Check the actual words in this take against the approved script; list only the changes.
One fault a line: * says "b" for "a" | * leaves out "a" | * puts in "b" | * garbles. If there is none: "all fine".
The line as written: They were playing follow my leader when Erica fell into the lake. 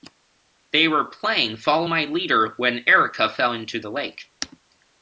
all fine